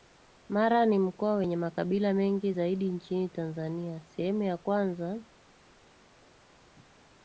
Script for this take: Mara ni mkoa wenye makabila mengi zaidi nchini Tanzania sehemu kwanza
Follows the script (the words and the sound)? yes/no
no